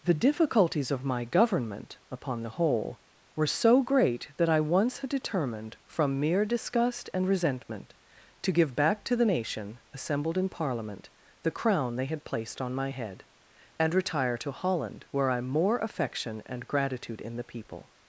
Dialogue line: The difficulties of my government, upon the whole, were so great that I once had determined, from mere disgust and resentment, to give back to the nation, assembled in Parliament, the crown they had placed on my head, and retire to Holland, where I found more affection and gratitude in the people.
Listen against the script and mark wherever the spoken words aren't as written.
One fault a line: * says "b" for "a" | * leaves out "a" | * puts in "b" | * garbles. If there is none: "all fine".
* leaves out "found"